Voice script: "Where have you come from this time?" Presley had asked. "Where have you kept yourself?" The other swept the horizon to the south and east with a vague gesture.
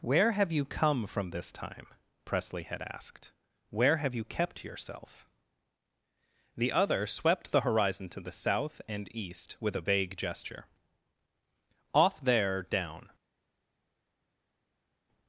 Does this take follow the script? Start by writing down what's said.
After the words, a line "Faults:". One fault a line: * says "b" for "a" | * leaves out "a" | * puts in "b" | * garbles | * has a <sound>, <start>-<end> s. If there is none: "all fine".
"Where have you come from this time?" Presley had asked. "Where have you kept yourself?" The other swept the horizon to the south and east with a vague gesture. "Off there, down
Faults:
* puts in "Off there down"